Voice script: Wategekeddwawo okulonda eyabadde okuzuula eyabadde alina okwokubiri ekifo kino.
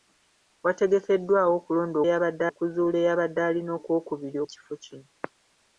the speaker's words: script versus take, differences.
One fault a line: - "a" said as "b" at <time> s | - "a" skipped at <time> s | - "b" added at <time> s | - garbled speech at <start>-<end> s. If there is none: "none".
none